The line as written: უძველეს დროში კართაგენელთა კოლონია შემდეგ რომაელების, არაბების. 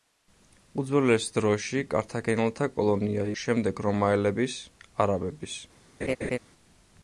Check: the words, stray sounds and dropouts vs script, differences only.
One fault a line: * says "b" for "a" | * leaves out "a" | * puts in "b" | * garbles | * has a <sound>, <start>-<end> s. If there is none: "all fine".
* has a laugh, 6.0-6.4 s